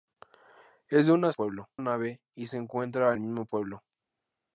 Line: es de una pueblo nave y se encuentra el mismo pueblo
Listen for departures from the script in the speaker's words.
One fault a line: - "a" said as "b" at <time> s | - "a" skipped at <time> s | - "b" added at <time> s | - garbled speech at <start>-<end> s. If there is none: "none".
none